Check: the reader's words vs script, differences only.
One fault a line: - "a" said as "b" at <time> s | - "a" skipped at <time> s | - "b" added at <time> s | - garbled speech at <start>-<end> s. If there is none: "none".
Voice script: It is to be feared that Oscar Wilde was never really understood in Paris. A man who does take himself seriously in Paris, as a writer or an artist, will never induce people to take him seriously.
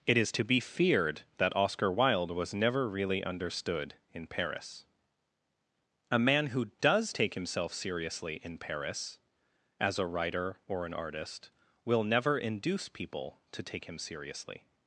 none